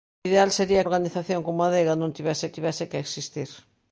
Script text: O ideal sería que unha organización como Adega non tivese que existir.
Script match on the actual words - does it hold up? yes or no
no